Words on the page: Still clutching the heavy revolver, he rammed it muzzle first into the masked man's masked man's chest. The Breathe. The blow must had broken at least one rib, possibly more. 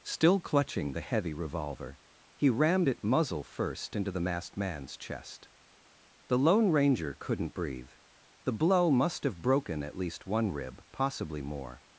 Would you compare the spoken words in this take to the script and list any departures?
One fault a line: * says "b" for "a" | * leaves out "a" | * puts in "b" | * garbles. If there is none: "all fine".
* says "chest The Lone Ranger couldn't" for "masked man's chest The"
* says "have" for "had"